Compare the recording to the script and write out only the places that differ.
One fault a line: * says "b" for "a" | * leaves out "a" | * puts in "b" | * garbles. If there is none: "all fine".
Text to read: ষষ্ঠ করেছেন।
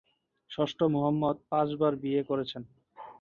* puts in "মুহাম্মদ পাঁচবার বিয়ে"